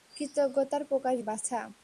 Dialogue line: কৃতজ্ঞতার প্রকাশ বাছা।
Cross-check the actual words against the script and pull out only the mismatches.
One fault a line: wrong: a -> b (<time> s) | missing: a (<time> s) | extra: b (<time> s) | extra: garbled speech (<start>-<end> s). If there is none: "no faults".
no faults